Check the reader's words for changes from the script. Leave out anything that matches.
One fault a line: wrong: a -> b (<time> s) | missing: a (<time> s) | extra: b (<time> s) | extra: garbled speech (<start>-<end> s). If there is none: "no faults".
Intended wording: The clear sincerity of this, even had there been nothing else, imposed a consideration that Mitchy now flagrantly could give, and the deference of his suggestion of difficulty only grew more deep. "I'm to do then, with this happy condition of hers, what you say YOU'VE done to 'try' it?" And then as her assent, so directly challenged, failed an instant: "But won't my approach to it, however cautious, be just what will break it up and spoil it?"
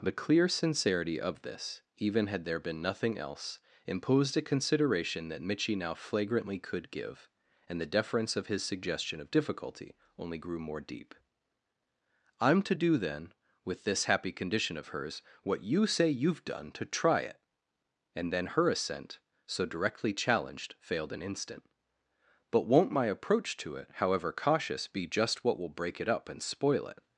missing: as (18.5 s)